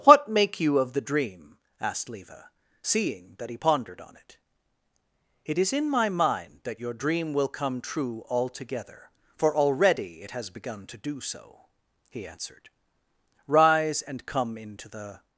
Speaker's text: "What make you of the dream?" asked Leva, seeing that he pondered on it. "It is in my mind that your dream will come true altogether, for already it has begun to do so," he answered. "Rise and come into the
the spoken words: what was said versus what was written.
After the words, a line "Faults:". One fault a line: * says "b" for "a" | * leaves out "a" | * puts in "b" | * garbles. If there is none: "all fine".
"What make you of the dream?" asked Leva, seeing that he pondered on it. "It is in my mind that your dream will come true altogether, for already it has begun to do so," he answered. "Rise and come into the
Faults:
all fine